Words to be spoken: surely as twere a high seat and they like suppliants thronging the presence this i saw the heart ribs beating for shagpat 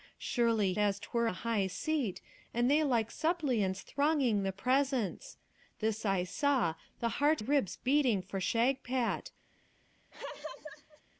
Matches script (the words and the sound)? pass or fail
fail